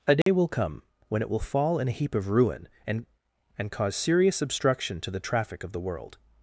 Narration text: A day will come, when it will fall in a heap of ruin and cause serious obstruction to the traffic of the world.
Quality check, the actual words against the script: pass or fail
fail